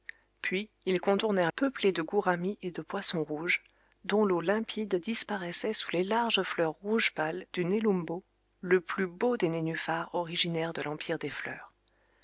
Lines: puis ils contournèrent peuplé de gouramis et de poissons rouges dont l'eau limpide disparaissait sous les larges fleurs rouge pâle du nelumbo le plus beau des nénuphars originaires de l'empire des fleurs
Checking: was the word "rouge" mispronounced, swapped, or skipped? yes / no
no